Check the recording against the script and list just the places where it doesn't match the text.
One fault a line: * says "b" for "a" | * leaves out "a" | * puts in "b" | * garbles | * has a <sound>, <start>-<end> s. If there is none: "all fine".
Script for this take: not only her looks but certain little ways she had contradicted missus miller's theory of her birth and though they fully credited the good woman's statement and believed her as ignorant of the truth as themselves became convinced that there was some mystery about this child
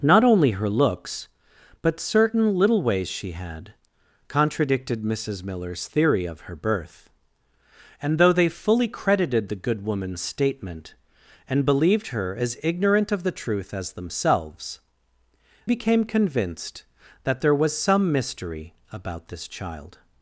all fine